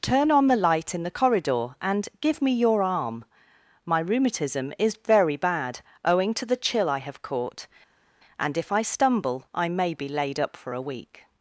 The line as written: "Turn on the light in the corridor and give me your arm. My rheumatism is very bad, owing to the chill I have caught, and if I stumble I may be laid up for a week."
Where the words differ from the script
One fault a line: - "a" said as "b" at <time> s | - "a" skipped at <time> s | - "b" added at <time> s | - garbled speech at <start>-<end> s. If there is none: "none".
none